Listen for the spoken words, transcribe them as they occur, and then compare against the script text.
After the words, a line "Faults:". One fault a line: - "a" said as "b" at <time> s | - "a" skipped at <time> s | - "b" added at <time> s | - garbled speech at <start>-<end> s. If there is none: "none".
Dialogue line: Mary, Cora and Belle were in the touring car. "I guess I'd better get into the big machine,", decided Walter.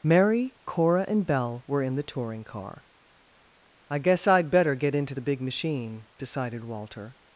Mary, Cora and Belle were in the touring car. "I guess I'd better get into the big machine,", decided Walter.
Faults:
none